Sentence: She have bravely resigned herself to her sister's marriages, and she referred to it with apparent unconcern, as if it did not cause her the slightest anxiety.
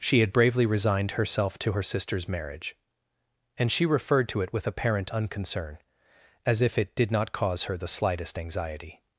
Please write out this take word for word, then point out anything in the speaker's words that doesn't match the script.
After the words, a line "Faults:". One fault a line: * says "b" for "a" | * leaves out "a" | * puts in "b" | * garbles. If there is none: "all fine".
She had bravely resigned herself to her sister's marriage, and she referred to it with apparent unconcern, as if it did not cause her the slightest anxiety.
Faults:
* says "had" for "have"
* says "marriage" for "marriages"